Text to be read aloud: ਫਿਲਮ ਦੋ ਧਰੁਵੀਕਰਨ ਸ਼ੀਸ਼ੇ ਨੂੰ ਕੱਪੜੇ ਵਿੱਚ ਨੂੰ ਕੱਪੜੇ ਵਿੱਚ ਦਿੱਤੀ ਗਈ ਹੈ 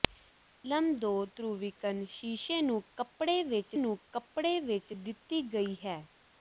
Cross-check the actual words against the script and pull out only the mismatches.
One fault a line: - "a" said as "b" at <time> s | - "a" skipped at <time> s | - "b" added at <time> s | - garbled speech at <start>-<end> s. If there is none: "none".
none